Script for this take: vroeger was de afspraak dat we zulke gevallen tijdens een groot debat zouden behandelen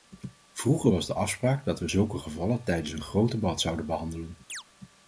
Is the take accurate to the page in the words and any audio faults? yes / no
no